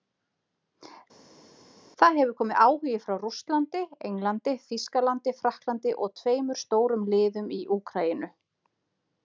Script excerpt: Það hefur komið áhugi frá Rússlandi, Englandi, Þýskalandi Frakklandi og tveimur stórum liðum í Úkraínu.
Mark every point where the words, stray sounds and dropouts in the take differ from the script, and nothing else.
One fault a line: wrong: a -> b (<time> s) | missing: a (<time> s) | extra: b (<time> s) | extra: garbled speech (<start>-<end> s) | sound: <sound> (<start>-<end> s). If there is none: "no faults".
no faults